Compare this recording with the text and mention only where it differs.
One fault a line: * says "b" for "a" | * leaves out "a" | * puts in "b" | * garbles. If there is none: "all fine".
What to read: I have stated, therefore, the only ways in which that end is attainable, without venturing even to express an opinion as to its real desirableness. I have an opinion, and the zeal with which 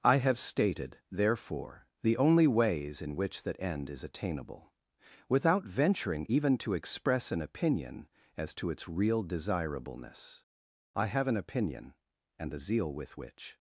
all fine